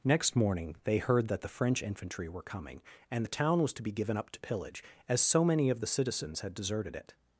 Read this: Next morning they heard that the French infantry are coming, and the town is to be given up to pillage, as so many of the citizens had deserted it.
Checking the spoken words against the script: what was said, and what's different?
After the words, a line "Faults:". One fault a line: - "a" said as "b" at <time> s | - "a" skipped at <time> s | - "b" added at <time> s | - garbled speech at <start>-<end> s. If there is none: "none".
Next morning they heard that the French infantry were coming, and the town was to be given up to pillage, as so many of the citizens had deserted it.
Faults:
- "are" said as "were" at 2.3 s
- "is" said as "was" at 3.6 s